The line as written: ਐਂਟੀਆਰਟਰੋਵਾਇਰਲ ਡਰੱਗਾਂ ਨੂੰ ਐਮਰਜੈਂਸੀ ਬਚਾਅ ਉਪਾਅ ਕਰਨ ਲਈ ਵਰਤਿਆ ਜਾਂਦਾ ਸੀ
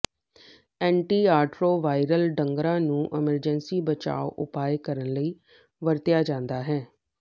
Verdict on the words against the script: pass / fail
fail